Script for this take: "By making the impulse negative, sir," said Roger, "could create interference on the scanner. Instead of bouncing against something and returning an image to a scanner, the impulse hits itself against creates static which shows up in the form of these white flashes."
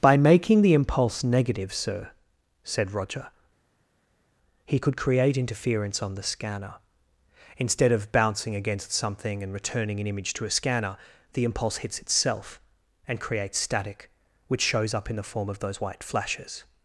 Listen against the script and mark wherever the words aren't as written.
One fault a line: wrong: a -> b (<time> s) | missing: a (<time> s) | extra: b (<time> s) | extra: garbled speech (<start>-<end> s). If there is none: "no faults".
extra: he (4.6 s)
wrong: against -> and (13.1 s)
wrong: these -> those (15.6 s)